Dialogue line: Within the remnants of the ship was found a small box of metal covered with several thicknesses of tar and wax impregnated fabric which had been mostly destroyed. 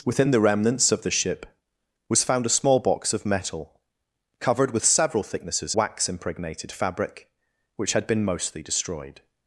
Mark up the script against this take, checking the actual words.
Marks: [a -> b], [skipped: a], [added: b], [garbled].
Within the remnants of the ship was found a small box of metal covered with several thicknesses [skipped: of tar and] wax impregnated fabric which had been mostly destroyed.